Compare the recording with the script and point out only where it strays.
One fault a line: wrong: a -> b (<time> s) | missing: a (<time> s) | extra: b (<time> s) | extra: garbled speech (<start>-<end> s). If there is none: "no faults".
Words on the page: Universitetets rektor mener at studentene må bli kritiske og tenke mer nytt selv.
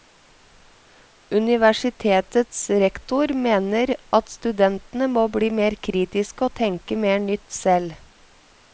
extra: mer (5.6 s)